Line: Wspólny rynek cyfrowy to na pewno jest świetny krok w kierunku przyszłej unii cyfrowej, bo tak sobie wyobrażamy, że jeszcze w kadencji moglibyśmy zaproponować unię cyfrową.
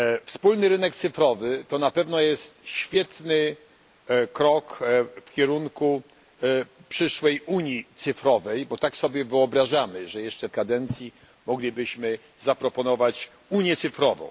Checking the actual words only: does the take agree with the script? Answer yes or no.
yes